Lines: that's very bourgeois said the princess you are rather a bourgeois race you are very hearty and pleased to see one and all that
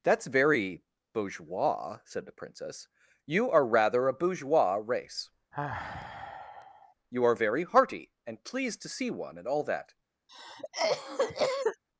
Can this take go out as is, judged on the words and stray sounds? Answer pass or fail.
fail